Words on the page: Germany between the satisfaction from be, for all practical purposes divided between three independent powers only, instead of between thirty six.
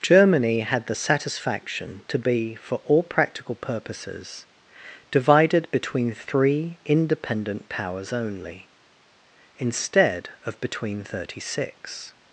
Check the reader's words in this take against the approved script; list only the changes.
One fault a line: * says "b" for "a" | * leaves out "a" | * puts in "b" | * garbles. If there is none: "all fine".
* says "had" for "between"
* says "to" for "from"